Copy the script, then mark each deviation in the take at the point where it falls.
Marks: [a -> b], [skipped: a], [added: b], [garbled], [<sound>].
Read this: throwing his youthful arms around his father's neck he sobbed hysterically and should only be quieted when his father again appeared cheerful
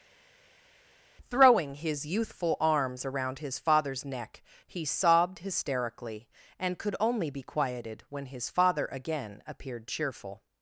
throwing his youthful arms around his father's neck he sobbed hysterically and [should -> could] only be quieted when his father again appeared cheerful